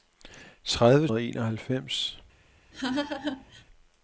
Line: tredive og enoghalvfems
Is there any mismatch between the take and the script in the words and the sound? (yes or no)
yes